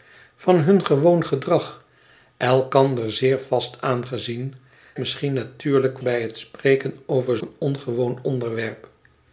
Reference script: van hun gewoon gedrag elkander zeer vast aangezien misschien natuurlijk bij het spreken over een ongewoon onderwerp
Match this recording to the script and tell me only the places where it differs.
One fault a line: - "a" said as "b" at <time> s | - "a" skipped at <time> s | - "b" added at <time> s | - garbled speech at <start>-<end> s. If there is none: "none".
none